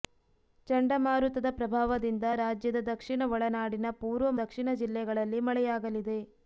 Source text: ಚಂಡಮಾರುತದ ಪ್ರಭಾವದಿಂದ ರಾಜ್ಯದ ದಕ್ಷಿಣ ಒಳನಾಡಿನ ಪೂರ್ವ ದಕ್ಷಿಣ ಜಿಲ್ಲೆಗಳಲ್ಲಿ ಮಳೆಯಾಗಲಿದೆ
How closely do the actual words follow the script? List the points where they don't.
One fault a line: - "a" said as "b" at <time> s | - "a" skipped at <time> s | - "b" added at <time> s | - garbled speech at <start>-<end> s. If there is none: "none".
none